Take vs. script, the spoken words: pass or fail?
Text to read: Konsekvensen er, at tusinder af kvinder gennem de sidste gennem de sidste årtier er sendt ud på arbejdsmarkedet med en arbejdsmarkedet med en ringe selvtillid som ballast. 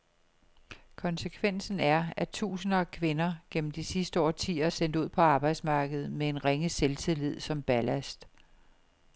fail